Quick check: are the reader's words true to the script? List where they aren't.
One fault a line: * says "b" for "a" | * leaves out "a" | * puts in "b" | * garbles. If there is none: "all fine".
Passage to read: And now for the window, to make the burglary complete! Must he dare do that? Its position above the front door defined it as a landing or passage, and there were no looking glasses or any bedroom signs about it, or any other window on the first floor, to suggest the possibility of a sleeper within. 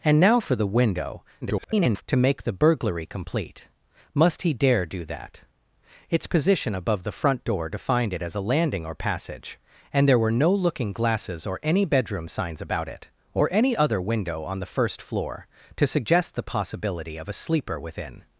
* garbles